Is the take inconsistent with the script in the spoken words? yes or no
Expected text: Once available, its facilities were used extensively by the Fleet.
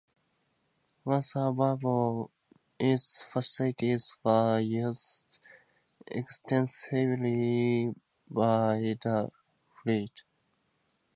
no